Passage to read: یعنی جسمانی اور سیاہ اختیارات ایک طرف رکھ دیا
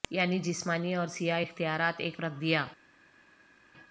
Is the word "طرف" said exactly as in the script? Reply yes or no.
no